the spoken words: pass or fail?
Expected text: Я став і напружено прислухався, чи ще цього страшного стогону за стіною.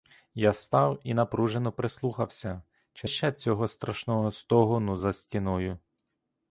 pass